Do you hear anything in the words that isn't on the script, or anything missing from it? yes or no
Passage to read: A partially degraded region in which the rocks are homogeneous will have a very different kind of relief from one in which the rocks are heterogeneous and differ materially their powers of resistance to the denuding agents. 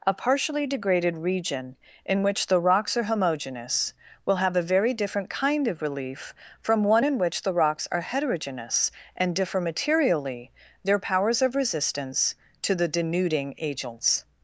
no